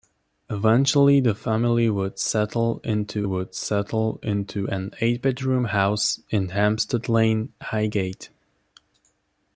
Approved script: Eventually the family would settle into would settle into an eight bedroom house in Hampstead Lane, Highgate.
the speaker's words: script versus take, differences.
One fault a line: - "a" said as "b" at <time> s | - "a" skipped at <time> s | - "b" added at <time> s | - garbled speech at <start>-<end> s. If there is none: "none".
none